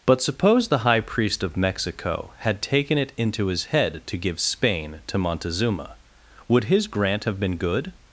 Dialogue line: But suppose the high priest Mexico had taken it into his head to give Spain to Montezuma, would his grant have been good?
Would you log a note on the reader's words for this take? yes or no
yes